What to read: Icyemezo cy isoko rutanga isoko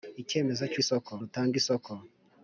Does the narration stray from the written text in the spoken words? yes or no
no